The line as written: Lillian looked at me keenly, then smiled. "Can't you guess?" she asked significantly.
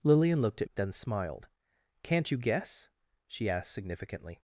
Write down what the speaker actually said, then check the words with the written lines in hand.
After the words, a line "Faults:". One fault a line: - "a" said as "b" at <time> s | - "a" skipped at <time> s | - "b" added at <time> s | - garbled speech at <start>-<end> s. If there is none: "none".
Lillian looked at then smiled. "Can't you guess?" she asked significantly.
Faults:
- "me keenly" skipped at 0.7 s